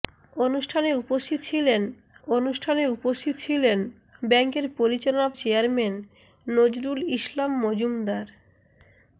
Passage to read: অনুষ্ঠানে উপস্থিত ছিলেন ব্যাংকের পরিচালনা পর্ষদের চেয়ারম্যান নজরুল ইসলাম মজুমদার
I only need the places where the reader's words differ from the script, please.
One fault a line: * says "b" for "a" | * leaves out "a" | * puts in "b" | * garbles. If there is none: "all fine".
* puts in "অনুষ্ঠানে উপস্থিত ছিলেন"
* leaves out "পর্ষদের"